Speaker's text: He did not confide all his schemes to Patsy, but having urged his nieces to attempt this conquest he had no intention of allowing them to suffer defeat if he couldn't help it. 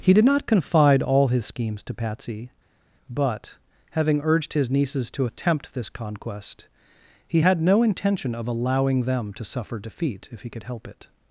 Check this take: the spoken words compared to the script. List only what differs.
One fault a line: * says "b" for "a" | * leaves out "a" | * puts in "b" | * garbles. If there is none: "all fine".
* says "could" for "couldn't"